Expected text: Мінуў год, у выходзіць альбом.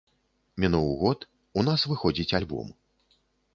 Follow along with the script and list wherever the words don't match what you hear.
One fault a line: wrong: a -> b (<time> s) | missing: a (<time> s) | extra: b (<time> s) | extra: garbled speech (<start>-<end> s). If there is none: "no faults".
extra: нас (1.7 s)